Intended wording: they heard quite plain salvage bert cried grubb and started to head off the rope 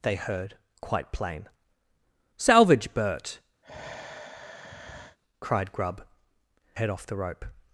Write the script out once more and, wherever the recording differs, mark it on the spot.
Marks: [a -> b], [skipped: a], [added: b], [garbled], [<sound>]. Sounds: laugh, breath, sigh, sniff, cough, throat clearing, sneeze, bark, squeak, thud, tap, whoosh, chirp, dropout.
they heard quite plain salvage bert [sigh] cried grubb [skipped: and started to] head off the rope